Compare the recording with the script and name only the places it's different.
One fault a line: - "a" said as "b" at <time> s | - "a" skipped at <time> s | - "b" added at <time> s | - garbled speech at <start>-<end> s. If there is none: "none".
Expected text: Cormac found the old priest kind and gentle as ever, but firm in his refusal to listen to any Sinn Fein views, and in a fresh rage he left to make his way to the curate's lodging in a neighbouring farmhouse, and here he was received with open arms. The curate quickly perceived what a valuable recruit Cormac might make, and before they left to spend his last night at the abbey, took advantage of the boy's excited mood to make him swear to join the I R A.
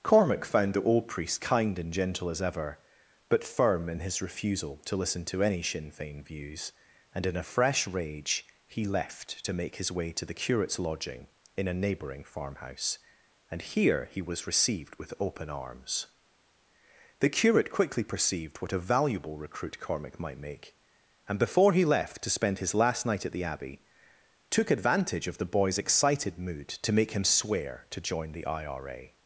- "they" said as "he" at 21.7 s